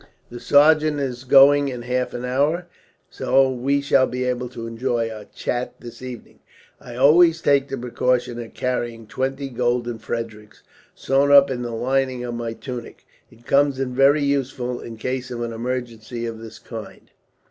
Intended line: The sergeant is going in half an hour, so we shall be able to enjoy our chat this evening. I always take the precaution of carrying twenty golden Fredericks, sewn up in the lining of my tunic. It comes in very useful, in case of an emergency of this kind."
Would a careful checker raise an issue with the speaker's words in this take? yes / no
no